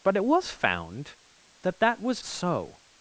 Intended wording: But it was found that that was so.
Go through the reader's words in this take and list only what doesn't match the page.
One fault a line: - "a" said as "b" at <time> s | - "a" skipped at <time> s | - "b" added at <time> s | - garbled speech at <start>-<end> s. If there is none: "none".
none